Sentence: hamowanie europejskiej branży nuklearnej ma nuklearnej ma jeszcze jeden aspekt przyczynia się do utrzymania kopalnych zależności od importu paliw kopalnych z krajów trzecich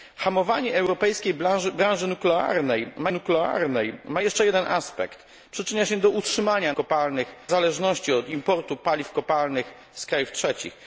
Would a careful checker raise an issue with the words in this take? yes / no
no